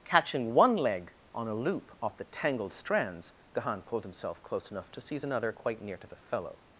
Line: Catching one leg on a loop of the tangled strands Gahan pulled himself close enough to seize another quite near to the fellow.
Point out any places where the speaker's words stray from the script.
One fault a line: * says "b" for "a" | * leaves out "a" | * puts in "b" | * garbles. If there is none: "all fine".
* says "off" for "of"